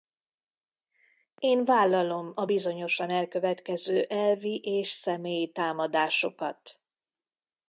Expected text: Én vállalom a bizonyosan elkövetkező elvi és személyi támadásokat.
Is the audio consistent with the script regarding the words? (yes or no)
yes